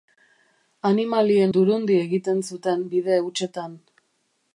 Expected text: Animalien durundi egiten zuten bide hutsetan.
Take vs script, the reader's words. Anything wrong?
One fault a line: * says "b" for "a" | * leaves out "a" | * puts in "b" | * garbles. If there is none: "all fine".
all fine